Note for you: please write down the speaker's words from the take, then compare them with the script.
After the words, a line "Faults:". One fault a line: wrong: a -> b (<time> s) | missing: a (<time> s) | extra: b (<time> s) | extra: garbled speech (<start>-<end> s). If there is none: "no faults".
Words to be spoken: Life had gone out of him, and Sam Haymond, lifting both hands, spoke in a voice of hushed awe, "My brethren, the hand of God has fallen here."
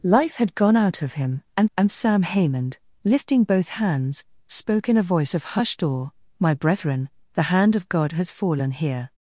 Life had gone out of him, and and Sam Haymond, lifting both hands, spoke in a voice of hushed awe, "My brethren, the hand of God has fallen here."
Faults:
extra: and (1.8 s)